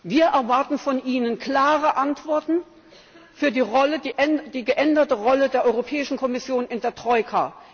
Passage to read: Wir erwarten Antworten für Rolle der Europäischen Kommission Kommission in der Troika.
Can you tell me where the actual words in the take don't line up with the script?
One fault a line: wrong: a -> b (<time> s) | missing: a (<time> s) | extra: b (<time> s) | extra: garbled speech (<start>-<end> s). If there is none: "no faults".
extra: von Ihnen klare (0.8 s)
extra: die geänderte (3.5 s)
missing: Kommission (6.7 s)